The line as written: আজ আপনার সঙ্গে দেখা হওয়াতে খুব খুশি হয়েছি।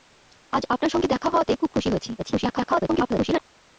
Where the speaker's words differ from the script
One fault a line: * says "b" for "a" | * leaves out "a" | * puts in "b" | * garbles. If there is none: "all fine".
* garbles